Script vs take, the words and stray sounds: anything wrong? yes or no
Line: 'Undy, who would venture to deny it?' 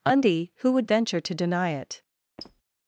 yes